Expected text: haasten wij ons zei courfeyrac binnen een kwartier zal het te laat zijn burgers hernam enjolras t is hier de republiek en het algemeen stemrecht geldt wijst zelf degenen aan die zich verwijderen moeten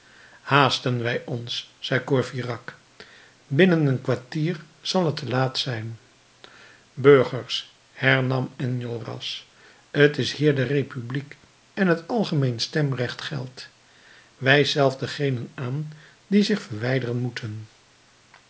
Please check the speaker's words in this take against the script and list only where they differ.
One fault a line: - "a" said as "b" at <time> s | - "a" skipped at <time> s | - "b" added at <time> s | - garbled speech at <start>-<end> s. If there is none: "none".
none